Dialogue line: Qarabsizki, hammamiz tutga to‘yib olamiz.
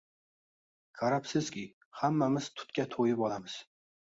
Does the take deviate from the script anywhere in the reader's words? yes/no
no